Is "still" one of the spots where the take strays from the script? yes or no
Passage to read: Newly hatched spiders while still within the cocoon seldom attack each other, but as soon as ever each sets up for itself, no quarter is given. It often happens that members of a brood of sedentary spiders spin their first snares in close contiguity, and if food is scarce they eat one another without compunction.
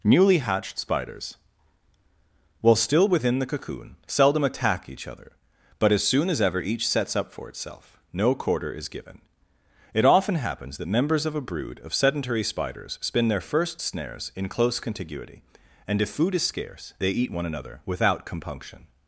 no